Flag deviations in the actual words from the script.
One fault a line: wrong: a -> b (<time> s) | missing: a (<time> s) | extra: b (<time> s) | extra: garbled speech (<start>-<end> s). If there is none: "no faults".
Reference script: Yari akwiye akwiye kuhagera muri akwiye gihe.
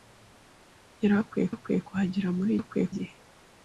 no faults